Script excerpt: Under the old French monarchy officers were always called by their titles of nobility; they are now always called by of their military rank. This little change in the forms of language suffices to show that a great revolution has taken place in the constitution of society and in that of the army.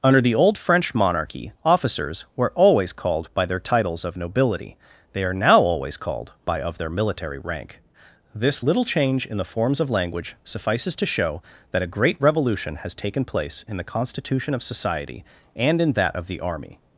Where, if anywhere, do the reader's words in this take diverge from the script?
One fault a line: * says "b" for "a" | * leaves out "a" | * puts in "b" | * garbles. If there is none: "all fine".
all fine